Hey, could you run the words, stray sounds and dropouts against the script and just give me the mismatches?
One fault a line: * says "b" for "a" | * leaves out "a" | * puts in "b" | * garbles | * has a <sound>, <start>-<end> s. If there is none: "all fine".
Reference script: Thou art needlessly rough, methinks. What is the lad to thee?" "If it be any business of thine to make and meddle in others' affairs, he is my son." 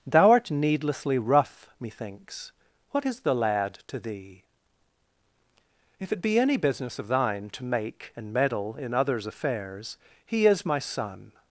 all fine